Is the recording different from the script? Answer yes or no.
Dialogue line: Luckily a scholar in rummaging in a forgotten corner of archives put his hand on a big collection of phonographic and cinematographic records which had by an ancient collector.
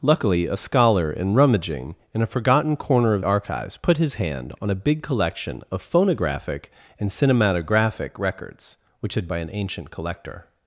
no